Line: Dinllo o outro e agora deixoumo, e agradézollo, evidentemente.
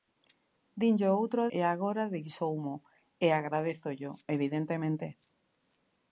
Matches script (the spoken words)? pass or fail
pass